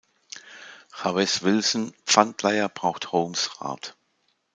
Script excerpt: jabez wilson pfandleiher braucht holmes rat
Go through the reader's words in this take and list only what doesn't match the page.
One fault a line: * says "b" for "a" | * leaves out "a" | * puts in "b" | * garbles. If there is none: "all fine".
all fine